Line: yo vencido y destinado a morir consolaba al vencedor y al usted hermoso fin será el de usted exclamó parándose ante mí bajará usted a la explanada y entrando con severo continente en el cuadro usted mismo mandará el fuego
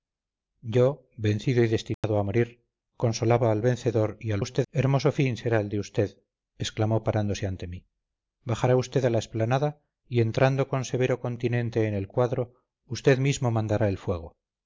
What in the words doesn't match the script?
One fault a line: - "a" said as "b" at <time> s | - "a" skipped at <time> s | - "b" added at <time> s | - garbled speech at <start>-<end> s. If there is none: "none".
none